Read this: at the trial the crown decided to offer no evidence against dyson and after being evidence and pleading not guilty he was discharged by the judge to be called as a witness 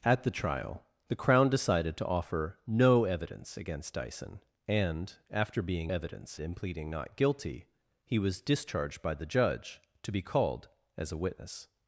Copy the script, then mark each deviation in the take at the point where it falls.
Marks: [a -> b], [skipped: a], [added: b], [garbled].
at the trial the crown decided to offer no evidence against dyson and after being evidence and pleading not guilty he was discharged by the judge to be called as a witness